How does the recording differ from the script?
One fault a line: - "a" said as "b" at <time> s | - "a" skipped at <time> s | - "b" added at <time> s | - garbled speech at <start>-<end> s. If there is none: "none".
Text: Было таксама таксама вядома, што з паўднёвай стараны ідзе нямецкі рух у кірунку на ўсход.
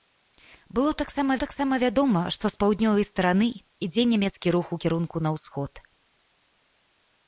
none